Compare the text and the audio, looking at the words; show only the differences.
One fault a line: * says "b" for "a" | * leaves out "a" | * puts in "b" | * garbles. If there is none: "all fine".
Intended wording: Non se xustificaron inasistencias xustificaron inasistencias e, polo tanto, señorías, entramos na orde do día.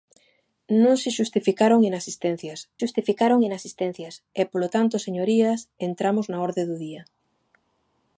all fine